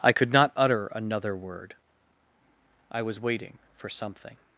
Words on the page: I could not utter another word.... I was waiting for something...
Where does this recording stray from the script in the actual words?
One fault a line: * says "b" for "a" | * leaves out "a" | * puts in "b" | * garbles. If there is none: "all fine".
all fine